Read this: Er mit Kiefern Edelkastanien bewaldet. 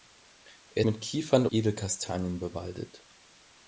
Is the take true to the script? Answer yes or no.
yes